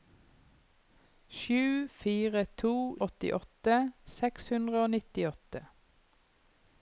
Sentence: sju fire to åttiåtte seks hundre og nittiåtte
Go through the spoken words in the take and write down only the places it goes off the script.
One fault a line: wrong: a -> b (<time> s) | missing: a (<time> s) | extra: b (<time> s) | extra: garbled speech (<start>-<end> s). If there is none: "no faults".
no faults